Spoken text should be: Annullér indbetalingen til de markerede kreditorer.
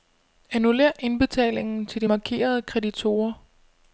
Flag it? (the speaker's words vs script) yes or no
no